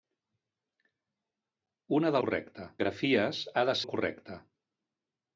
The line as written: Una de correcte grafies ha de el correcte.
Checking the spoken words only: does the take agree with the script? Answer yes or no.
yes